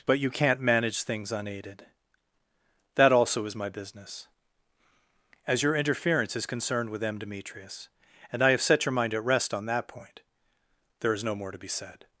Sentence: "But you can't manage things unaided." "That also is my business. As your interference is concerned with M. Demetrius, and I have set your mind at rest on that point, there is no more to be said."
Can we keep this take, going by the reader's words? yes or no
yes